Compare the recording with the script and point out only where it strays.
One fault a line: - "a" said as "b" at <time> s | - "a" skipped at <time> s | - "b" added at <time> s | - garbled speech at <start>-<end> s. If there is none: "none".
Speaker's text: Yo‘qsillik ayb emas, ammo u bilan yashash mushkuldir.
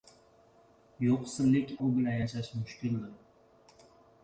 - "ayb emas ammo" skipped at 1.7 s